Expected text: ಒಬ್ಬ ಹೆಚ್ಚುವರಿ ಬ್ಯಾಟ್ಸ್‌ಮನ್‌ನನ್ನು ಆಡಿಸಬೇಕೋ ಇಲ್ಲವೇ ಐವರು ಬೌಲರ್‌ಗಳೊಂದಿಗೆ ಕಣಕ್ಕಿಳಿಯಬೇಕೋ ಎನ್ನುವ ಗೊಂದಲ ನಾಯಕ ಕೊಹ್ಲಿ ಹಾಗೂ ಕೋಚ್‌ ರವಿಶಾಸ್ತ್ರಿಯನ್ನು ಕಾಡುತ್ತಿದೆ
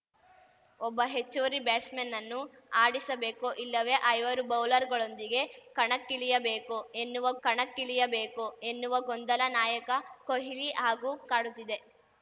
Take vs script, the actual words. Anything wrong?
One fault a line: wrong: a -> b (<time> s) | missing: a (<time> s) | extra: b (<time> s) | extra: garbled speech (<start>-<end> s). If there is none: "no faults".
extra: ಕಣಕ್ಕಿಳಿಯಬೇಕೋ ಎನ್ನುವ (7.4 s)
missing: ಕೋಚ್ ರವಿಶಾಸ್ತ್ರಿಯನ್ನು (11.1 s)